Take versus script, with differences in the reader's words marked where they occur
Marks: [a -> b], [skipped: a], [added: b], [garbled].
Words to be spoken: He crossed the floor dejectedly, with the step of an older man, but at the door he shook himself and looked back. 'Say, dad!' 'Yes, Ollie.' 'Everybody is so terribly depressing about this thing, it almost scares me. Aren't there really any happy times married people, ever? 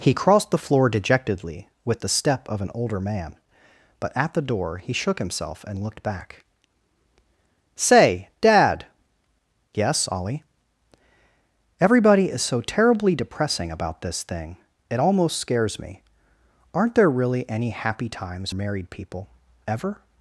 He crossed the floor dejectedly, with the step of an older man, but at the door he shook himself and looked back. 'Say, dad!' 'Yes, Ollie.' 'Everybody is so terribly depressing about this thing, it almost scares me. Aren't there really any happy times married people, ever?